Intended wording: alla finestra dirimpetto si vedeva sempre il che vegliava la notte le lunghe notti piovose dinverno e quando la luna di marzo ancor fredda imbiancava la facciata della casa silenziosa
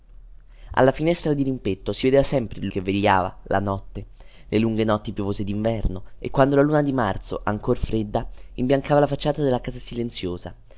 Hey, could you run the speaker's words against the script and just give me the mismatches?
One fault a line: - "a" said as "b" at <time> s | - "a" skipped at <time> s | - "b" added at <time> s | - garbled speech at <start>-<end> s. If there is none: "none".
none